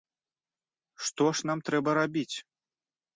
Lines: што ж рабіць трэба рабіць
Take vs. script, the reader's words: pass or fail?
fail